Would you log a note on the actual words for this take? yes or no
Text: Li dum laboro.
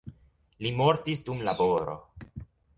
yes